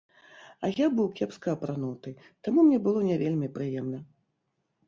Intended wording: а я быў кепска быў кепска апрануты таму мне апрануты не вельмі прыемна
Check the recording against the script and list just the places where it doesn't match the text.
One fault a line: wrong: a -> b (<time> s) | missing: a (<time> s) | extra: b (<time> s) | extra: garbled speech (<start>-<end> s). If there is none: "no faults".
missing: быў кепска (1.5 s)
wrong: апрануты -> было (2.9 s)